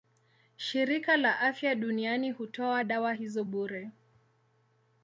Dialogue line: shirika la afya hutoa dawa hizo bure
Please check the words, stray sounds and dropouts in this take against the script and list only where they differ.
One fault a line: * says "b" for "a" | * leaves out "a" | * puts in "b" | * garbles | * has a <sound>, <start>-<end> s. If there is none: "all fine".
* puts in "duniani"